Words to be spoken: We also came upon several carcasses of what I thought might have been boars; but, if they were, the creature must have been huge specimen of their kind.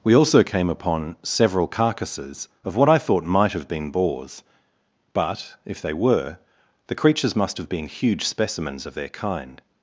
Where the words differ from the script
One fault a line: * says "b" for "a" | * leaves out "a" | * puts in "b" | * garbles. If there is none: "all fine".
* says "creatures" for "creature"
* says "specimens" for "specimen"